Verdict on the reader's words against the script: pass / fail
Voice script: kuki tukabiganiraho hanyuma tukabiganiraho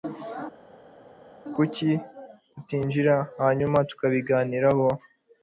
fail